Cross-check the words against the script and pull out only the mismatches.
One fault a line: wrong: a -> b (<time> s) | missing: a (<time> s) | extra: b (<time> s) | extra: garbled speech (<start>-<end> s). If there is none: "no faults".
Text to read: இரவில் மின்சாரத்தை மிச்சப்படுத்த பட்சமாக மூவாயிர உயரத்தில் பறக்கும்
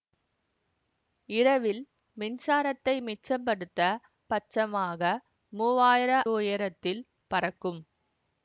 no faults